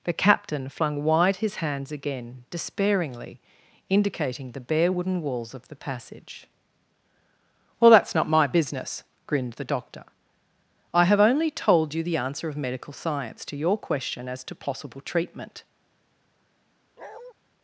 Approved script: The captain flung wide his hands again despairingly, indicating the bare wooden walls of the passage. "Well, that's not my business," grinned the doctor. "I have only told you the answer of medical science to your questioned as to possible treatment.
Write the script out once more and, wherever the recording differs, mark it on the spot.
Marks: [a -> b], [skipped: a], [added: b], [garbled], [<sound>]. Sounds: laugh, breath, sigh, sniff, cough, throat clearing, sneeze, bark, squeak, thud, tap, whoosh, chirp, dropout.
The captain flung wide his hands again despairingly, indicating the bare wooden walls of the passage. "Well, that's not my business," grinned the doctor. "I have only told you the answer of medical science to your [questioned -> question] as to possible treatment. [bark]